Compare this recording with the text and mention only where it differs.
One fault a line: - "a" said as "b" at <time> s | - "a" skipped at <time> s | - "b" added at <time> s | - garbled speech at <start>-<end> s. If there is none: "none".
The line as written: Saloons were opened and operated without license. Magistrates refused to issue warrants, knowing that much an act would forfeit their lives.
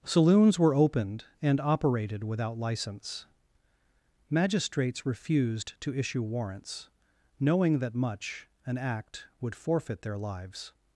none